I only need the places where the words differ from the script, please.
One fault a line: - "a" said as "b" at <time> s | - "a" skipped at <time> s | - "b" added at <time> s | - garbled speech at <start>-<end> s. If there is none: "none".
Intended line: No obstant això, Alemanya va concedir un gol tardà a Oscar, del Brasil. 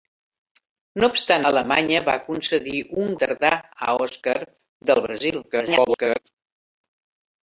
- "això" skipped at 1.4 s
- "gol" skipped at 3.2 s
- garbled speech at 5.5-6.2 s